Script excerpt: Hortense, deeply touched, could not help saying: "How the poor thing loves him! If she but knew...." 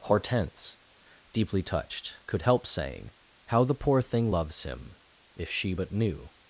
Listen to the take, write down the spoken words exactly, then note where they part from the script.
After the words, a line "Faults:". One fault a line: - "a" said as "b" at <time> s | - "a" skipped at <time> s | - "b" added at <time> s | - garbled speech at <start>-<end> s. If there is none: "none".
Hortense, deeply touched, could help saying: "How the poor thing loves him! If she but knew...."
Faults:
- "not" skipped at 2.4 s